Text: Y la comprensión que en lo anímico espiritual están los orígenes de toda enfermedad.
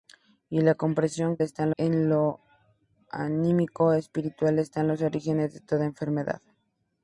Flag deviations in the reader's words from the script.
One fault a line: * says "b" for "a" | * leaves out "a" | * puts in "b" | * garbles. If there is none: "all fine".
* says "están" for "que"